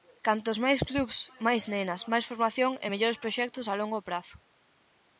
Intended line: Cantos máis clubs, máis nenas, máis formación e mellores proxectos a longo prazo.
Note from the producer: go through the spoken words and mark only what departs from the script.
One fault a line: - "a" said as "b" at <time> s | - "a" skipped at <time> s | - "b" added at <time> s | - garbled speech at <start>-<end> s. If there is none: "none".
none